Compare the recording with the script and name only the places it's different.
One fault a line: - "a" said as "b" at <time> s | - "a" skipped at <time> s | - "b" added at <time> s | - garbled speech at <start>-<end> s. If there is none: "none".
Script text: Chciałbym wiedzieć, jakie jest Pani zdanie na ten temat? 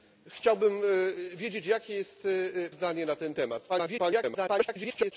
- "Pani" skipped at 2.3 s
- garbled speech at 3.7-5.1 s